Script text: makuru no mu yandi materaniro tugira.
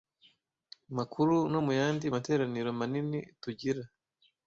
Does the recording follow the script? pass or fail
fail